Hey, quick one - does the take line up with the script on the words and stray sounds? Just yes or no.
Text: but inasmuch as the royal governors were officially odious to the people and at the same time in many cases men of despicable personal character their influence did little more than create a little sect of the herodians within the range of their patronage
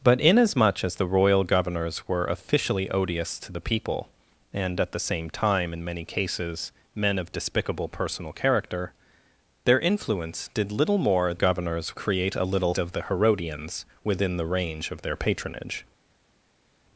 no